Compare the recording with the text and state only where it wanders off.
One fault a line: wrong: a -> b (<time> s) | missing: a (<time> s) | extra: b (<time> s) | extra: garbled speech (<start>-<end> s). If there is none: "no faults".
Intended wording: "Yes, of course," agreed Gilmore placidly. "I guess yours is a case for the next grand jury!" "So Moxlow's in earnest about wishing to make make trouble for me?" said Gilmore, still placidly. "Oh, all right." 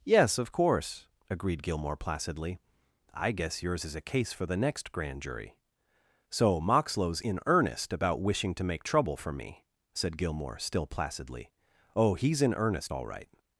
missing: make (8.8 s)
extra: he's in earnest (12.1 s)